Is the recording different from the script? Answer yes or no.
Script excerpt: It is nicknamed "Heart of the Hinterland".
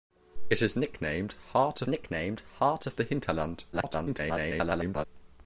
yes